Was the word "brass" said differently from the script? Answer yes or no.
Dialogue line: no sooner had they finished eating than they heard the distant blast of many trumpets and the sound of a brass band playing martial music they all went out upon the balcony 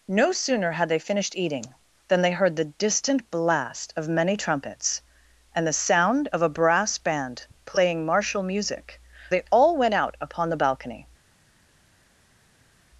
no